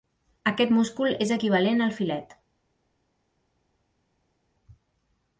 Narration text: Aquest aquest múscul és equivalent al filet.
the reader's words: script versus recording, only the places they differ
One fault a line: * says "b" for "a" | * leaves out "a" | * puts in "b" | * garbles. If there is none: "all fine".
* leaves out "aquest"